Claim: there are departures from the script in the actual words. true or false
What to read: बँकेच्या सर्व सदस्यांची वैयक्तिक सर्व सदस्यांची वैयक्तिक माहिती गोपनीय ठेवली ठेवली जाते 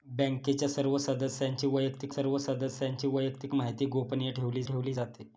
false